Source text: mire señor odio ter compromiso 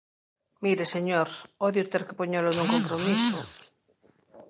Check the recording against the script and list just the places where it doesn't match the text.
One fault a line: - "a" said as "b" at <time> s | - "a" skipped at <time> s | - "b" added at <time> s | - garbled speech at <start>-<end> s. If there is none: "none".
- "que poñelo nun" added at 2.1 s